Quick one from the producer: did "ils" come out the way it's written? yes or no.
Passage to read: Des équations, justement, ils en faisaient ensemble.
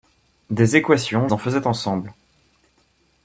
no